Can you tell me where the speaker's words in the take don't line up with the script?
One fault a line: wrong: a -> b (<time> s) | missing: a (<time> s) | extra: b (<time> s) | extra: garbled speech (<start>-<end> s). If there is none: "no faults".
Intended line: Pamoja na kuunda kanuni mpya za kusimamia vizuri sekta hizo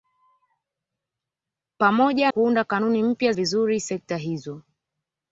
missing: na (2.3 s)
missing: za kusimamia (3.3 s)